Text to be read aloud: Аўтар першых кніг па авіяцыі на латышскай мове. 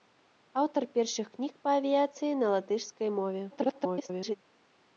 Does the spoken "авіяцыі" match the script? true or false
true